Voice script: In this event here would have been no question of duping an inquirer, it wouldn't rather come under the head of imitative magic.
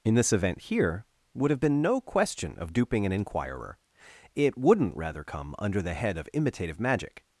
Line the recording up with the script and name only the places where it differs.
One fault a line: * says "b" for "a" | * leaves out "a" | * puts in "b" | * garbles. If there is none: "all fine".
all fine